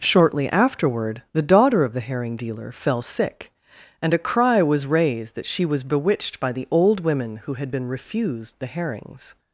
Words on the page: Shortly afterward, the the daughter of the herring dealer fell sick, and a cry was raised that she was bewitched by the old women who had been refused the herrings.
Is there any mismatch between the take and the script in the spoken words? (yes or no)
yes